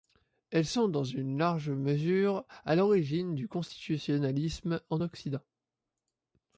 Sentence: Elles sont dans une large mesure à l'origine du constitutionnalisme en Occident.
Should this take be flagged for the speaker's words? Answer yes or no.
no